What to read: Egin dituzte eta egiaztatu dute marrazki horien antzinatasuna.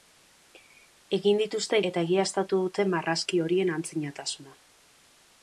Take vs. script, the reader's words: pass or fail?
pass